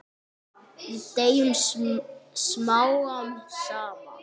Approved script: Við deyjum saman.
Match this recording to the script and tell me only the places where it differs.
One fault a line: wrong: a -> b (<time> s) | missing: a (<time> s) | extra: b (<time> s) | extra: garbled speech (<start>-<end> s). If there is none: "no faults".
extra: smám (2.4 s)